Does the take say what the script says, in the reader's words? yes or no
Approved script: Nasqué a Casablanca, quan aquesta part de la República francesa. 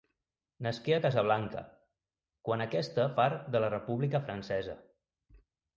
yes